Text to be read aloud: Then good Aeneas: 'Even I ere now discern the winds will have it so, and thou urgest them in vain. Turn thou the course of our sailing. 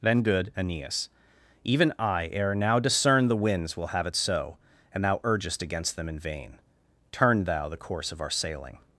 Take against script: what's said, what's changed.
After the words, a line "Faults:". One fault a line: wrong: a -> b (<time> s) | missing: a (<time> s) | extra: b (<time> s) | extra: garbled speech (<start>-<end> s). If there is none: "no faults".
Then good Aeneas: 'Even I ere now discern the winds will have it so, and thou urgest against them in vain. Turn thou the course of our sailing.
Faults:
extra: against (5.6 s)